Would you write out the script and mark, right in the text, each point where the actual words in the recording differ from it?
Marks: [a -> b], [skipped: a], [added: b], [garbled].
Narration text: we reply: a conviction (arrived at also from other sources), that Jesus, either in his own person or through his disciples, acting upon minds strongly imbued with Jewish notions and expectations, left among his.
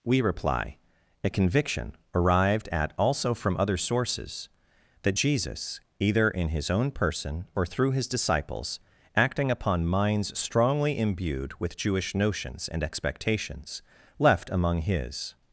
we reply: a conviction (arrived at also from other sources), that Jesus, either in his own person or through his disciples, acting upon minds strongly imbued with Jewish notions and expectations, left among his.